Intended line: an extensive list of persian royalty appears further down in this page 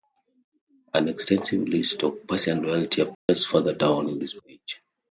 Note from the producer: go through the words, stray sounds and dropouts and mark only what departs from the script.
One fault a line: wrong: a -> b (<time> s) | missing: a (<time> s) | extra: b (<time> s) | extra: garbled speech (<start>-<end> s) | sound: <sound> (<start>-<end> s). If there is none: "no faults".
sound: dropout (3.1-3.3 s)